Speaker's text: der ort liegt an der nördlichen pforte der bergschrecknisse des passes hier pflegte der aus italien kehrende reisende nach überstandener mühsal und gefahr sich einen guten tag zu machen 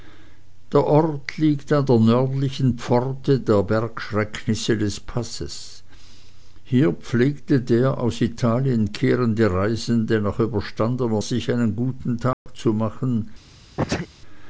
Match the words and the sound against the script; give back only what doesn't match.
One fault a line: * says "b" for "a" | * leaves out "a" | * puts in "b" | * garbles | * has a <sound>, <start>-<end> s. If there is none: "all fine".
* leaves out "mühsal und gefahr"
* has a dropout, 12.3-12.5 s
* has a sneeze, 13.8-14.1 s